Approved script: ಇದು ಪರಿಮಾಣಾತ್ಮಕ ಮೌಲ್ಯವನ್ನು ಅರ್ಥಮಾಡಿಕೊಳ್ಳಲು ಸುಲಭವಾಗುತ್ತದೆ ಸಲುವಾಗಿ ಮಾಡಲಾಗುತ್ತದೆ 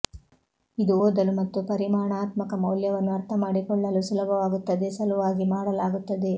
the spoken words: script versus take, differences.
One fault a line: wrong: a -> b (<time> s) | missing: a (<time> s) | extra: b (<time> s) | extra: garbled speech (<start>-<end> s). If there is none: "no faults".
extra: ಓದಲು ಮತ್ತು (1.0 s)